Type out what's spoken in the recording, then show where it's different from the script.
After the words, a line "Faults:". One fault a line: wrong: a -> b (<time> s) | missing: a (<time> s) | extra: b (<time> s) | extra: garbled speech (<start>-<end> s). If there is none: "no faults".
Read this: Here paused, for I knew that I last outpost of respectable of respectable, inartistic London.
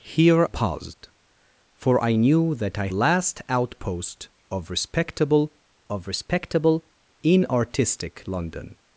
Here paused, for I knew that I last outpost of respectable of respectable, inartistic London.
Faults:
no faults